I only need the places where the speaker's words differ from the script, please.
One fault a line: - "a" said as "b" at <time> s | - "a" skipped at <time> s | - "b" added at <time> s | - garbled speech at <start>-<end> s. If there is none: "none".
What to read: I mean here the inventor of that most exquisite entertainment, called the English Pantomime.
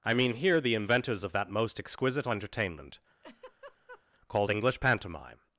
- "inventor" said as "inventors" at 0.8 s
- "the" skipped at 4.5 s